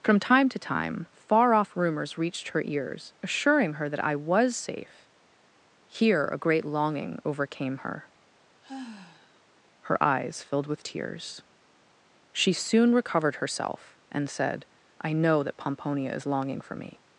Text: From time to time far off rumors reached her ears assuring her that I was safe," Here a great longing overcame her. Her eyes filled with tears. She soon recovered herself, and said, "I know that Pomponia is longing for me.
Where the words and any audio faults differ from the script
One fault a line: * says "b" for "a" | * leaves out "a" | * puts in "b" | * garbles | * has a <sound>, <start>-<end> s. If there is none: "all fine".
* has a sigh, 8.6-9.4 s